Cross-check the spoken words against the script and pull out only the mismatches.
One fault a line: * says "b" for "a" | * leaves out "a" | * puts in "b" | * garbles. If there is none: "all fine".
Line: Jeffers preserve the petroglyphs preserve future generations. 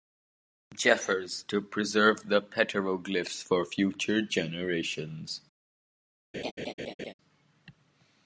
* puts in "to"
* says "for" for "preserve"